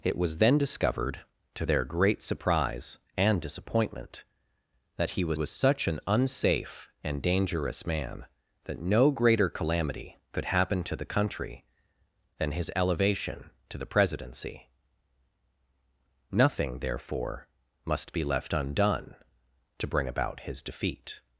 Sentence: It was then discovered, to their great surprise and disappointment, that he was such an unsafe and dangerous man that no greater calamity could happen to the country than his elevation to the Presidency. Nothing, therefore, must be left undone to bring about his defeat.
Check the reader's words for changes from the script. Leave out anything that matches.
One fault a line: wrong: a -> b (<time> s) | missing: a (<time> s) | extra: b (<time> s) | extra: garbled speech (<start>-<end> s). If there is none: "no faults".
extra: was (5.3 s)